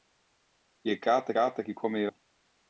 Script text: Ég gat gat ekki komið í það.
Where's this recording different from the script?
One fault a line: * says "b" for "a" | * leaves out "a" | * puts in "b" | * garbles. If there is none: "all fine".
all fine